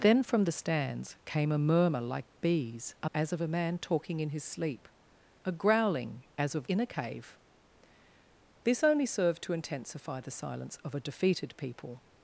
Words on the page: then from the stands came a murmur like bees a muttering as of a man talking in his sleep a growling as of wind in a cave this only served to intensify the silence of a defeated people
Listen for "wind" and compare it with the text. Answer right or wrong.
wrong